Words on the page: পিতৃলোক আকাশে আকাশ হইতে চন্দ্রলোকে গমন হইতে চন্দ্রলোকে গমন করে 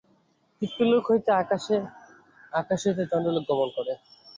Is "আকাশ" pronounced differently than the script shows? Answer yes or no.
no